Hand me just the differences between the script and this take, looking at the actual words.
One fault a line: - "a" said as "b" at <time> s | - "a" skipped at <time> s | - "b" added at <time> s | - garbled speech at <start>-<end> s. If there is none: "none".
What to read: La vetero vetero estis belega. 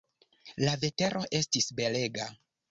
- "vetero" skipped at 1.2 s